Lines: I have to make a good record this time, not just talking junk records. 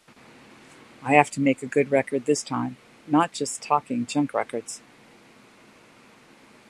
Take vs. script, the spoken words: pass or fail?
pass